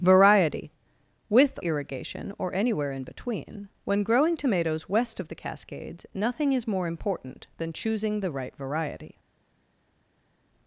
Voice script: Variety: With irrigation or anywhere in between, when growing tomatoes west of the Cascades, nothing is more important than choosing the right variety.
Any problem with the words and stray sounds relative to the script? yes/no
no